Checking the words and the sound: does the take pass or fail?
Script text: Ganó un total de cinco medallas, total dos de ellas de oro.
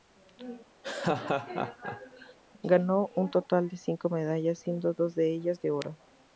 fail